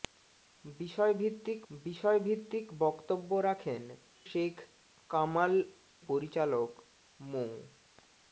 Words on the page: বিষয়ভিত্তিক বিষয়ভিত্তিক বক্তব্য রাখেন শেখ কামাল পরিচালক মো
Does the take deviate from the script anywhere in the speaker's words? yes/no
no